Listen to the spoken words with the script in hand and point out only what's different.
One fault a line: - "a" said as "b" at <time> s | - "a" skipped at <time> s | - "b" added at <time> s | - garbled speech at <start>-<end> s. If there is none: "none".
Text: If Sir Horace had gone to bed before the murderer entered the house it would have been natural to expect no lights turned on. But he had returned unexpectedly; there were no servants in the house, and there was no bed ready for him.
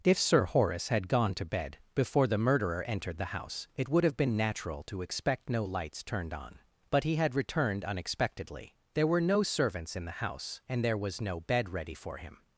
none